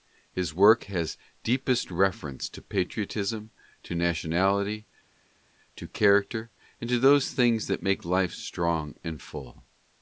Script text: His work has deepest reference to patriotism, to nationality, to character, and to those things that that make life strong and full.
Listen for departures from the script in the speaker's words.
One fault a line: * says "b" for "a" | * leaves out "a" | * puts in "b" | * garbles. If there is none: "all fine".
* leaves out "that"